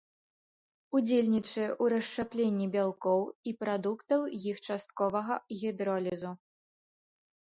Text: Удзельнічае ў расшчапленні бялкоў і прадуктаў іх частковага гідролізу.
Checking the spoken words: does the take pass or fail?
pass